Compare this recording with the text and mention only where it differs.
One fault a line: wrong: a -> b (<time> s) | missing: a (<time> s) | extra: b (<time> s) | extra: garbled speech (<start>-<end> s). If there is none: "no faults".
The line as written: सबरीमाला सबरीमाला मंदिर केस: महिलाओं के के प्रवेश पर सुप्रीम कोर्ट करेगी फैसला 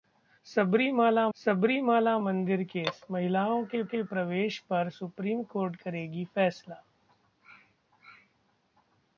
no faults